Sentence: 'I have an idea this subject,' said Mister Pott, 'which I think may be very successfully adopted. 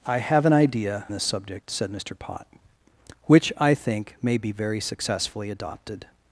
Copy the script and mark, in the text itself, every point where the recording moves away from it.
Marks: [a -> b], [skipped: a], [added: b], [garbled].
'I have an idea this subject,' said Mister Pott, 'which I think may be very successfully adopted.